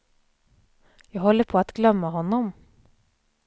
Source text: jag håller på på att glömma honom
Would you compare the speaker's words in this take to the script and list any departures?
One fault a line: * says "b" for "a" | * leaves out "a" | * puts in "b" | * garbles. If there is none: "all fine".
* leaves out "på"